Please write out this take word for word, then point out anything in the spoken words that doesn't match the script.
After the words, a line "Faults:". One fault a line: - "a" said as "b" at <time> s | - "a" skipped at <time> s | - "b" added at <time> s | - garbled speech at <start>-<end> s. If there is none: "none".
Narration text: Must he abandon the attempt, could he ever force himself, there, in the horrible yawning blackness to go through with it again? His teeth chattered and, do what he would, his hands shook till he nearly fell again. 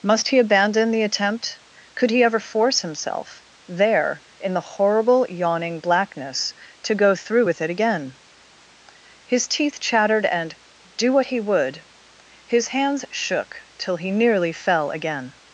Must he abandon the attempt, could he ever force himself, there, in the horrible yawning blackness to go through with it again? His teeth chattered and, do what he would, his hands shook till he nearly fell again.
Faults:
none